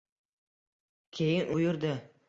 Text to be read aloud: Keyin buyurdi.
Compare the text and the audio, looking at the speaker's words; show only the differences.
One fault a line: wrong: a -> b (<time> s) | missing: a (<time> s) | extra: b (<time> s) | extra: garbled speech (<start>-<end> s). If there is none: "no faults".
no faults